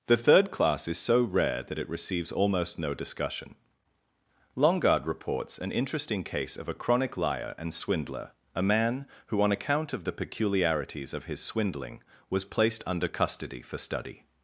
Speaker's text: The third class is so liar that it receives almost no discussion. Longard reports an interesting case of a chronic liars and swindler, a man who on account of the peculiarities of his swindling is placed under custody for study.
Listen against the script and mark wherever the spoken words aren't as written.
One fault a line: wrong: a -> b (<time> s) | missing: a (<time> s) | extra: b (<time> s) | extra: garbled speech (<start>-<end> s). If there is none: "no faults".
wrong: liar -> rare (1.2 s)
wrong: liars -> liar (7.2 s)
wrong: is -> was (12.3 s)